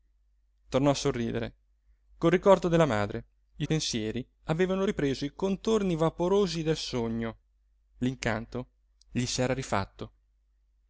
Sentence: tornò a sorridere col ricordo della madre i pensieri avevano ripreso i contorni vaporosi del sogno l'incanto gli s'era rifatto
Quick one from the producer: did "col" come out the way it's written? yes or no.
yes